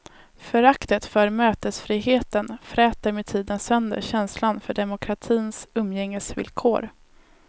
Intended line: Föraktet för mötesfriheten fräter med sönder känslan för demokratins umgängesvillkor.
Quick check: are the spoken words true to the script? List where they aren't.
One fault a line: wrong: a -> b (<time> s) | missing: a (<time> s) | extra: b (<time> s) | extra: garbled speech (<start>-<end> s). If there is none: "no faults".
extra: tiden (3.2 s)